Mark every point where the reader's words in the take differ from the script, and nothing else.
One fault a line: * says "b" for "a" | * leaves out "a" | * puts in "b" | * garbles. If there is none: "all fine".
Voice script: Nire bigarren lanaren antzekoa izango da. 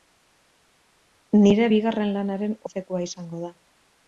all fine